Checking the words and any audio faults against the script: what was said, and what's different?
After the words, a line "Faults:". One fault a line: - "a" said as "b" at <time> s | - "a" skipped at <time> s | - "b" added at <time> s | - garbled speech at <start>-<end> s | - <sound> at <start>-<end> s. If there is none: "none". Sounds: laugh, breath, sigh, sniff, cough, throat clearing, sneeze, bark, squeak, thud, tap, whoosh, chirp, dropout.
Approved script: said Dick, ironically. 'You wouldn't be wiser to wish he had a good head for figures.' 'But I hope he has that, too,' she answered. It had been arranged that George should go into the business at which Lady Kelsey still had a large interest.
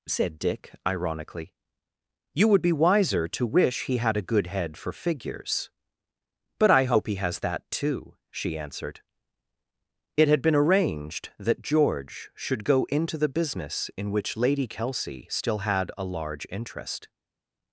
said Dick, ironically. 'You would be wiser to wish he had a good head for figures.' 'But I hope he has that, too,' she answered. It had been arranged that George should go into the business in which Lady Kelsey still had a large interest.
Faults:
- "wouldn't" said as "would" at 2.5 s
- "at" said as "in" at 14.0 s